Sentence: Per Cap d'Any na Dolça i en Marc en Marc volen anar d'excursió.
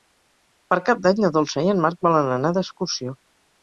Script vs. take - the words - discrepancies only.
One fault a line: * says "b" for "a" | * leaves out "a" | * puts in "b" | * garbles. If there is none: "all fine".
* leaves out "en Marc"